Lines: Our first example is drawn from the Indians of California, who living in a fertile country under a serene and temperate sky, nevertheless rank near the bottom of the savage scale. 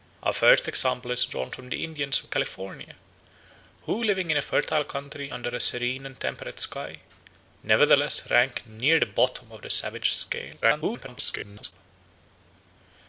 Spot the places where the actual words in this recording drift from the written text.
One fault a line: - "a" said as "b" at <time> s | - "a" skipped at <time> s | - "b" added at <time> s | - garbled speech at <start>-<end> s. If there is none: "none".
- garbled speech at 10.6-11.7 s